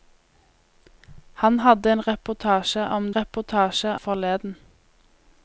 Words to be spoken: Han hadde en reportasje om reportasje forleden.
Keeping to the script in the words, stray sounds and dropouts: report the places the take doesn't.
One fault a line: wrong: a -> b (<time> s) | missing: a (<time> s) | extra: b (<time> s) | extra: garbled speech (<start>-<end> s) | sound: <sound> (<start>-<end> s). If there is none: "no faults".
no faults